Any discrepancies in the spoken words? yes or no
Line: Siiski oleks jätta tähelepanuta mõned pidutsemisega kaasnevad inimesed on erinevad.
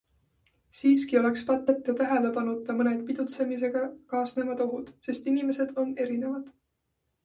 yes